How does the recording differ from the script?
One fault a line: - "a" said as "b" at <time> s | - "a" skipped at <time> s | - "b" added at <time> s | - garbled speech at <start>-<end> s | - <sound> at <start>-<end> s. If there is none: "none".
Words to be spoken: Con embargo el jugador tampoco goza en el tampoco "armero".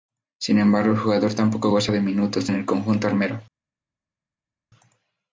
- "Con" said as "Sin" at 0.4 s
- "de minutos" added at 1.9 s
- "tampoco" said as "conjunto" at 2.6 s